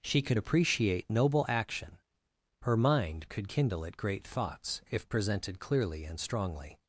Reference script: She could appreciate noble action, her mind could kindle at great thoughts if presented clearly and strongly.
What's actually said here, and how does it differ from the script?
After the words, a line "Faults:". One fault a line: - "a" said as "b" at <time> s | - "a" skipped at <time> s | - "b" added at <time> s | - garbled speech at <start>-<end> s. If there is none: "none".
She could appreciate noble action, her mind could kindle at great thoughts if presented clearly and strongly.
Faults:
none